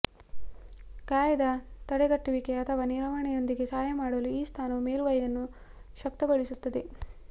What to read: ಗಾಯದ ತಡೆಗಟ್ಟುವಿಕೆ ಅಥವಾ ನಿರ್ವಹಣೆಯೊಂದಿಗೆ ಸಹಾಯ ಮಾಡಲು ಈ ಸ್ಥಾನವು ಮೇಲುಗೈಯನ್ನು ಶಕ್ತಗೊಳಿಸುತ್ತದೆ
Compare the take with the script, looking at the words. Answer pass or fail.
pass